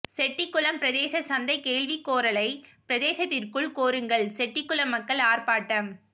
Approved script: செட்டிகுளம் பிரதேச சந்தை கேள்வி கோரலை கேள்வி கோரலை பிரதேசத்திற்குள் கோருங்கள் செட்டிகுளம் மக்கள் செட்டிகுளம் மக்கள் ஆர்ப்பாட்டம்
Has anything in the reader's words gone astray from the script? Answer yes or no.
yes